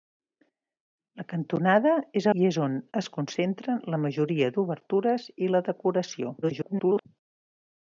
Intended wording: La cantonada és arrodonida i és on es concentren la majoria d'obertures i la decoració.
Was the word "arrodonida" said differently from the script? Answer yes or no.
yes